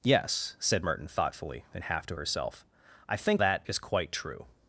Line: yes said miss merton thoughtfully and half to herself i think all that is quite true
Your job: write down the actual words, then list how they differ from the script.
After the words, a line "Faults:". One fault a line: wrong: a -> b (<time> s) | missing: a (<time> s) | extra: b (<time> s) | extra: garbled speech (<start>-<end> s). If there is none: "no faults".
yes said merton thoughtfully and half to herself i think that is quite true
Faults:
missing: miss (0.8 s)
missing: all (3.4 s)